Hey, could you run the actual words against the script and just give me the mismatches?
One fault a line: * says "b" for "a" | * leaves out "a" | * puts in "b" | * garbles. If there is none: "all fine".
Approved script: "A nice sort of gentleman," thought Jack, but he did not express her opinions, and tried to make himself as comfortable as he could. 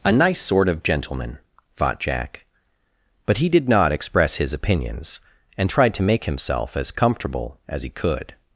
* says "his" for "her"